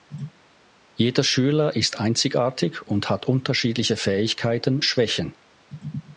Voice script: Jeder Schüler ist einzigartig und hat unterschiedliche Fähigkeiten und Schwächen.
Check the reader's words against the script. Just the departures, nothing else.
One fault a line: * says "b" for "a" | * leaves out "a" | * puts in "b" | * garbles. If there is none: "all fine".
* leaves out "und"